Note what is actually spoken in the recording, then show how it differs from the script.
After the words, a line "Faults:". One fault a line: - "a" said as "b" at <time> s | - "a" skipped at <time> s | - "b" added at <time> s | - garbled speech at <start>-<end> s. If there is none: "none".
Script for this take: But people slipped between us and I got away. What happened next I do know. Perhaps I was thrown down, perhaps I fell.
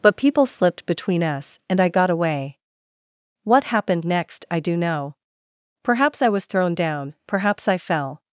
But people slipped between us and I got away. What happened next I do know. Perhaps I was thrown down, perhaps I fell.
Faults:
none